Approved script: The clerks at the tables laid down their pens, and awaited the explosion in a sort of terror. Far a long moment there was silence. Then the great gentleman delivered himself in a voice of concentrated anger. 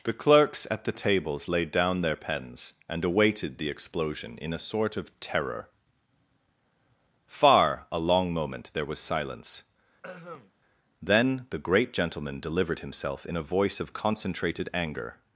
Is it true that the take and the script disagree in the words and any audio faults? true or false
true